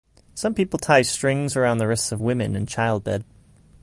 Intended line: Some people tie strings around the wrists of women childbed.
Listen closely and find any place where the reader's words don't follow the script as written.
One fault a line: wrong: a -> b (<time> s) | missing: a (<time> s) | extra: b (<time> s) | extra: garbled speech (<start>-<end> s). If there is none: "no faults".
extra: in (2.5 s)